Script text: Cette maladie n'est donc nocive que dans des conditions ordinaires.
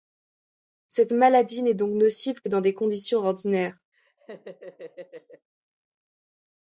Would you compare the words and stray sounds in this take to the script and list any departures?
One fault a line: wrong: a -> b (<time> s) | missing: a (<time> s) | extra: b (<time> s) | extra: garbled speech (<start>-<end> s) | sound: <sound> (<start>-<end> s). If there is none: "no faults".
sound: laugh (3.9-5.5 s)